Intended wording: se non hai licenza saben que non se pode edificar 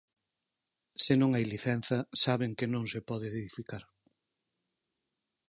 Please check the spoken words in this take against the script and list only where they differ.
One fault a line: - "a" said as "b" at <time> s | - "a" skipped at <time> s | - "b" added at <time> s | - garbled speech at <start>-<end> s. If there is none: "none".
none